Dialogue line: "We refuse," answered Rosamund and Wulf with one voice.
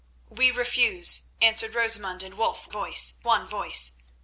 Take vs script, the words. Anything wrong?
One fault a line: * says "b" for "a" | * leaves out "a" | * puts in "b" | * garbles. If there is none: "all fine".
* says "voice" for "with"